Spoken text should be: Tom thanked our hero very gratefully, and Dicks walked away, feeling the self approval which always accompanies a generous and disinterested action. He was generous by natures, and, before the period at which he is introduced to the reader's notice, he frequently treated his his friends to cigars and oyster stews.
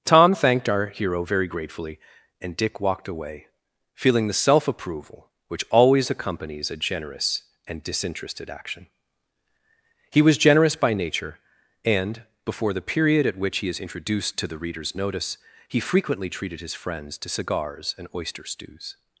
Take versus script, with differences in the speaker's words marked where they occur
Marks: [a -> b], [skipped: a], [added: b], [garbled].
Tom thanked our hero very gratefully, and [Dicks -> Dick] walked away, feeling the self approval which always accompanies a generous and disinterested action. He was generous by [natures, -> nature] and, before the period at which he is introduced to the reader's notice, he frequently treated his [skipped: his] friends to cigars and oyster stews.